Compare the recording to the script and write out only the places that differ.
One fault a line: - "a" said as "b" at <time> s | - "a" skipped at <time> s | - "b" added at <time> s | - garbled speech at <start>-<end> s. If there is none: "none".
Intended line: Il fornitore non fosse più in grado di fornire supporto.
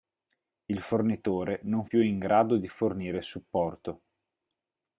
- "fosse" skipped at 1.9 s